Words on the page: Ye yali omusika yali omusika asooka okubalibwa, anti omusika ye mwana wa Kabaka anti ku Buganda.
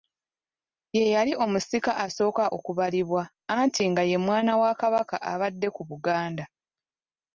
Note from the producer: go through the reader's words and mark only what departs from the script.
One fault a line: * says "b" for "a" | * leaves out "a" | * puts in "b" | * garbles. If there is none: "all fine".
* leaves out "yali omusika"
* says "nga" for "omusika"
* says "abadde" for "anti"